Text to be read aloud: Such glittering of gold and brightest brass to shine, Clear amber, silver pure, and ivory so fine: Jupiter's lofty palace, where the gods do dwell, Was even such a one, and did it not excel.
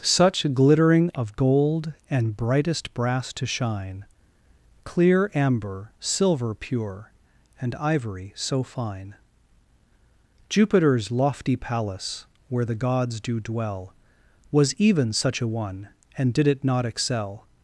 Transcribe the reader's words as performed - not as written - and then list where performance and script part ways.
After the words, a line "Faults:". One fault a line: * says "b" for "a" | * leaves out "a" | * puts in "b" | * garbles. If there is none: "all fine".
Such glittering of gold and brightest brass to shine, Clear amber, silver pure, and ivory so fine: Jupiter's lofty palace, where the gods do dwell, Was even such a one, and did it not excel.
Faults:
all fine